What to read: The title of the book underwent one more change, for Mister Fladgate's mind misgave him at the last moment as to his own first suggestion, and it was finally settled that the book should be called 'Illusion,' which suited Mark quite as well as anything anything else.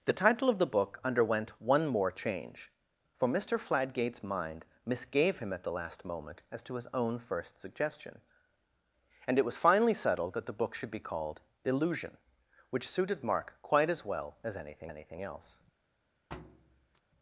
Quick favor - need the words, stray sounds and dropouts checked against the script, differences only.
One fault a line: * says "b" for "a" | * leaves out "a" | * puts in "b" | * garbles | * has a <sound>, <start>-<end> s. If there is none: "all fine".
* has a thud, 16.3-17.0 s